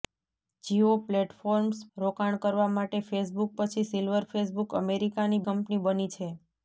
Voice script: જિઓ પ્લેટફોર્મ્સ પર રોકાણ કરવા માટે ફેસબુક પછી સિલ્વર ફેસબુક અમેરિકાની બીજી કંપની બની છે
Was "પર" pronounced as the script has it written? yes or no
no